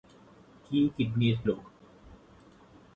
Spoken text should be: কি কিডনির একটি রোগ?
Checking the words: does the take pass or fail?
fail